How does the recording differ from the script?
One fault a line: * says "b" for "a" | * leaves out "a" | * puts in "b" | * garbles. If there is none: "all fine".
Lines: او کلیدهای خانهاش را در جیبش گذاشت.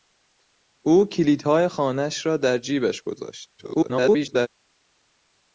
* garbles